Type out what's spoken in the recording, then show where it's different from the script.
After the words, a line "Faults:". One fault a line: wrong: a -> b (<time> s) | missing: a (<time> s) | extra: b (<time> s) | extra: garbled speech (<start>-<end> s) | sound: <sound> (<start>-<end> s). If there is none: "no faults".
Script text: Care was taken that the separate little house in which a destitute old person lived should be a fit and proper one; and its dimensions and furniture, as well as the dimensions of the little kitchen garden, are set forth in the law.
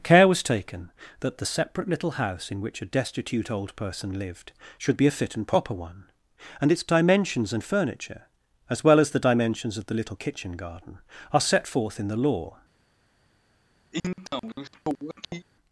Care was taken that the separate little house in which a destitute old person lived should be a fit and proper one; and its dimensions and furniture, as well as the dimensions of the little kitchen garden, are set forth in the law.
Faults:
sound: sniff (13.9-15.5 s)